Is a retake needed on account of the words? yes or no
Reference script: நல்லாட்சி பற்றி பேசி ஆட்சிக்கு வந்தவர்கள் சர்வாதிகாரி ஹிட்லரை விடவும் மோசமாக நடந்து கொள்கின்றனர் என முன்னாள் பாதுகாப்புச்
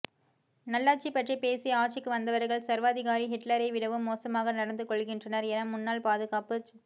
no